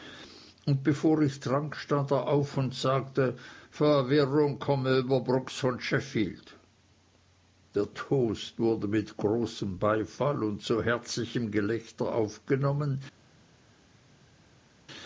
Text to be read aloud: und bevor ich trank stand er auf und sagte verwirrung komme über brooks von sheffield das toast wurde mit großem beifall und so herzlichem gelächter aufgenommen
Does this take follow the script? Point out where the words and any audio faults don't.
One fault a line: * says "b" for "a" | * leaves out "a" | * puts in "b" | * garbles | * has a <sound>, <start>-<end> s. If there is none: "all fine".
* says "der" for "das"